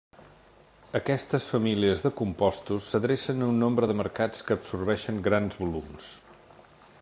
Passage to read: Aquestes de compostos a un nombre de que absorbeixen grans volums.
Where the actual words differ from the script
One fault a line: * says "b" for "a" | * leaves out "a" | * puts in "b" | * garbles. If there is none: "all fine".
* puts in "famílies"
* puts in "s'adrecen"
* puts in "mercats"